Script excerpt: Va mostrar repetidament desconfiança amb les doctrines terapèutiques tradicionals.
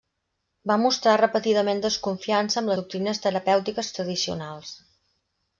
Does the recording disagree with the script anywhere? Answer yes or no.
yes